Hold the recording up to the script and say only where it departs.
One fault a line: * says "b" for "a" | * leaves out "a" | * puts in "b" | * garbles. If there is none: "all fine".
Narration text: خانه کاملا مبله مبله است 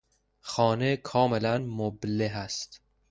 * leaves out "مبله"